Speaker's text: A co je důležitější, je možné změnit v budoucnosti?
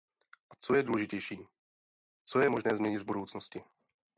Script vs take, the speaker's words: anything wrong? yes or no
yes